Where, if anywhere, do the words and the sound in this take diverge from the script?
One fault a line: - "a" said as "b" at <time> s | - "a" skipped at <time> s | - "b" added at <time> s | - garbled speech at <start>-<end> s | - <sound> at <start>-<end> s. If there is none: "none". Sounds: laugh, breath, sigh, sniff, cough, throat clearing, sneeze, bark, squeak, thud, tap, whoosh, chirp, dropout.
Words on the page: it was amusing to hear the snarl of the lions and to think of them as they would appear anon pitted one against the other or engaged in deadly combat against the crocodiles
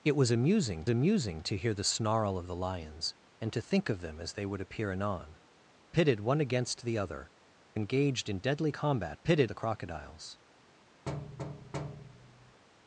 - "amusing" added at 0.9 s
- "or" skipped at 7.3 s
- "against" said as "pitted" at 9.2 s
- thud at 11.1-12.6 s